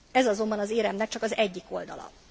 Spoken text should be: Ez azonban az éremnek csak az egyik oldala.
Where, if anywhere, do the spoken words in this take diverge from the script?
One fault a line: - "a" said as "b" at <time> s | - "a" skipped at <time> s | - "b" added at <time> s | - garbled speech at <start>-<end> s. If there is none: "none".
none